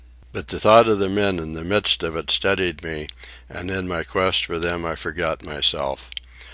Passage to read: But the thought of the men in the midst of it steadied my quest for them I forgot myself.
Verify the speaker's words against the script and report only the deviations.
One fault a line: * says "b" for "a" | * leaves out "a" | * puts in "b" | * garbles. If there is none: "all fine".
* puts in "me and in"